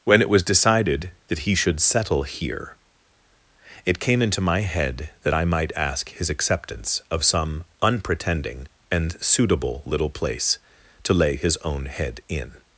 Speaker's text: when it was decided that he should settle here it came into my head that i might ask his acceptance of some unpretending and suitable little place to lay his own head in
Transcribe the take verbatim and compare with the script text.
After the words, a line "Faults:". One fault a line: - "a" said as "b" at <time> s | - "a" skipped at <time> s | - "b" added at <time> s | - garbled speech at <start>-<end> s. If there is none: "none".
when it was decided that he should settle here it came into my head that i might ask his acceptance of some unpretending and suitable little place to lay his own head in
Faults:
none